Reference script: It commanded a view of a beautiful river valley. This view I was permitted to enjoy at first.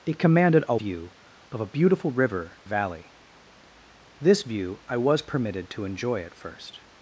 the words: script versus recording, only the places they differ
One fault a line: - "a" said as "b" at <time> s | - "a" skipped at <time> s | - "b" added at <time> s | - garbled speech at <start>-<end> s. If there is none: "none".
none